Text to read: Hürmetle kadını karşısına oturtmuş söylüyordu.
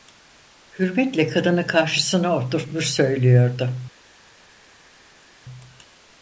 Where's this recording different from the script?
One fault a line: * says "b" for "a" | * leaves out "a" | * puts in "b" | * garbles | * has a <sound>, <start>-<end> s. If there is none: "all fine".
all fine